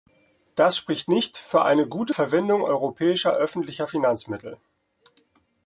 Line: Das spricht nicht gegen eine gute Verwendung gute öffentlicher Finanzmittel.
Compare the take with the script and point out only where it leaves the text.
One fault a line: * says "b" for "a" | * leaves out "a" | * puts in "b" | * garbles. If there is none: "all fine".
* says "für" for "gegen"
* says "europäischer" for "gute"